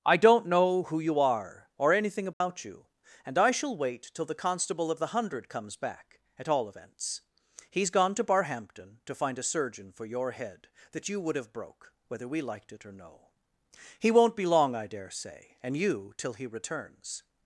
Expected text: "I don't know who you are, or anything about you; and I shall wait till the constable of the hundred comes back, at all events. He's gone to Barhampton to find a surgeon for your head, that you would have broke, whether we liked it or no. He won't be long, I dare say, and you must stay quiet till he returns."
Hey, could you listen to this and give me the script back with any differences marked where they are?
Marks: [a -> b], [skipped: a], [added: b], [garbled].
"I don't know who you are, or anything about you; and I shall wait till the constable of the hundred comes back, at all events. He's gone to Barhampton to find a surgeon for your head, that you would have broke, whether we liked it or no. He won't be long, I dare say, and you [skipped: must stay quiet] till he returns."